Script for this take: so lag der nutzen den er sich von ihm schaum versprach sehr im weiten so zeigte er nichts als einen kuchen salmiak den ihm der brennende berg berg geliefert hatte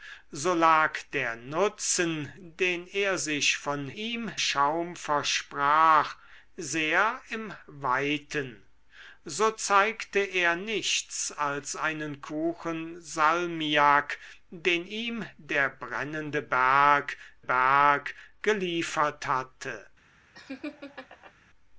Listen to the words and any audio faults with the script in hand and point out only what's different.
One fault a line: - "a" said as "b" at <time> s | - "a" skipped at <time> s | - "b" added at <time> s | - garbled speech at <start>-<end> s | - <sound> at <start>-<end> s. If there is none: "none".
- laugh at 20.3-21.3 s